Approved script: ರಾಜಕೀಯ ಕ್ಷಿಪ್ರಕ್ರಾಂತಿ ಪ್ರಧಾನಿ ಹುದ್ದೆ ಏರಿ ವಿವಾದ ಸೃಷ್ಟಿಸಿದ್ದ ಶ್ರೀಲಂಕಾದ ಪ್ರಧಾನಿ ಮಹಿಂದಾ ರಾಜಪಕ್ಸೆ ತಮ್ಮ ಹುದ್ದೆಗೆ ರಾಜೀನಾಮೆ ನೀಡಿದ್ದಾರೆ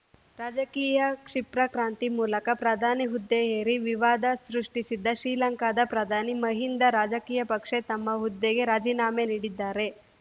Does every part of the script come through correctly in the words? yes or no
no